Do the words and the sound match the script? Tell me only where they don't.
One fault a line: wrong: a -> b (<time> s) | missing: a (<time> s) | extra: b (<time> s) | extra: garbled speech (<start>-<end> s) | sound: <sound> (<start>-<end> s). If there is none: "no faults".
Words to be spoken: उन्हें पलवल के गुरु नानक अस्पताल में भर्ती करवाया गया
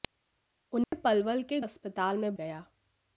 sound: dropout (0.8-0.9 s)
missing: गुरु नानक (1.6 s)
missing: भर्ती करवाया (2.3 s)